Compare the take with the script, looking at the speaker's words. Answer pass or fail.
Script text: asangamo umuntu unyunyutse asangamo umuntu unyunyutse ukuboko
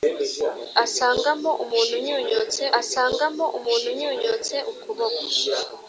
pass